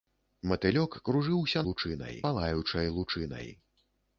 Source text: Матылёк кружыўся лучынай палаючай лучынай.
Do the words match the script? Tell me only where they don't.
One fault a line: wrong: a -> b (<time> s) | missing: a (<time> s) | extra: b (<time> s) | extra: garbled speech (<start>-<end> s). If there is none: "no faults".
no faults